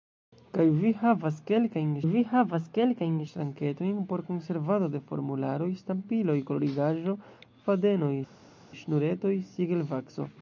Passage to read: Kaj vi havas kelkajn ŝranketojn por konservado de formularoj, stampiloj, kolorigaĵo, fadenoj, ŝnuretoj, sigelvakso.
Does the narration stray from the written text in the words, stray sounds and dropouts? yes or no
yes